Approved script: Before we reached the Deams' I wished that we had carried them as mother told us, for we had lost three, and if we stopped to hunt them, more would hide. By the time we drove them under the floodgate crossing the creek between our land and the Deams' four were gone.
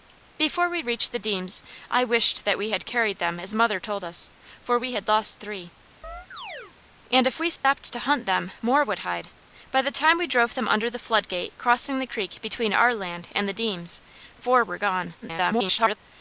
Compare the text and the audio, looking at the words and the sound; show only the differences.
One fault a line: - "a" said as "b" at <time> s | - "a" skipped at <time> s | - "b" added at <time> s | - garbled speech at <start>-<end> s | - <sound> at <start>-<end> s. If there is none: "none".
- chirp at 6.0-6.7 s
- dropout at 7.6-7.6 s
- garbled speech at 15.2-16.0 s